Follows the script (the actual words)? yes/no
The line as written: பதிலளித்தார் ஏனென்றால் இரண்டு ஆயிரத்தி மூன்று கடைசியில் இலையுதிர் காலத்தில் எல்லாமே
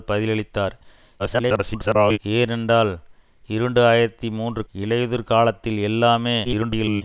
no